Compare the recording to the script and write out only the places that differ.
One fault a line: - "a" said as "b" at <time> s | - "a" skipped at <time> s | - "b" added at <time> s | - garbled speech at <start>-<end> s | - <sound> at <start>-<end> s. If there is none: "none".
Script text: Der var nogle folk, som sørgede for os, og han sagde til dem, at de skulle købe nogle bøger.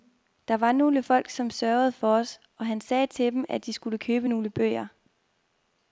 none